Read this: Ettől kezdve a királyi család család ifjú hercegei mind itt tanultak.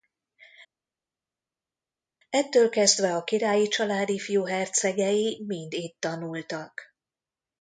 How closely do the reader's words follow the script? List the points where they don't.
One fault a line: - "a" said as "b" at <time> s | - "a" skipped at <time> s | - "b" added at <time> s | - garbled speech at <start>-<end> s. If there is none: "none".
- "család" skipped at 4.1 s